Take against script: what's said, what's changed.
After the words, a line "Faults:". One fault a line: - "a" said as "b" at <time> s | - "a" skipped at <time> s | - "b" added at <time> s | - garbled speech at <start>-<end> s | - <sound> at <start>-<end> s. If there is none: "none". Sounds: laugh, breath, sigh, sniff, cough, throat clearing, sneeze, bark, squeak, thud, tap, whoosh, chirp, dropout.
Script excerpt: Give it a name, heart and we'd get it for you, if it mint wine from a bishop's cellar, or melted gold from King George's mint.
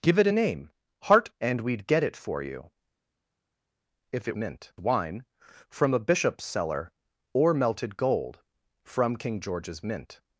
Give it a name, heart and we'd get it for you, if it mint wine from a bishop's cellar, or melted gold from King George's mint.
Faults:
none